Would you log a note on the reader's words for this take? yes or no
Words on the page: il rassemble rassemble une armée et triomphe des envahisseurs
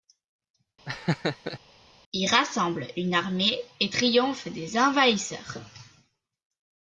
yes